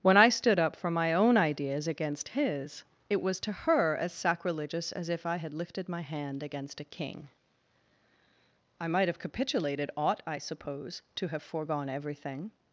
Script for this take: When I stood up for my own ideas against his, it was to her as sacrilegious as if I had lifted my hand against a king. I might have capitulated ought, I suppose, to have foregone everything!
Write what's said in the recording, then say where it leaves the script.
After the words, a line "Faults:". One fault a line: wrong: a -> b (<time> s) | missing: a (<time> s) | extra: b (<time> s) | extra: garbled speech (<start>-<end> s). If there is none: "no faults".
When I stood up for my own ideas against his, it was to her as sacrilegious as if I had lifted my hand against a king. I might have capitulated ought, I suppose, to have foregone everything!
Faults:
no faults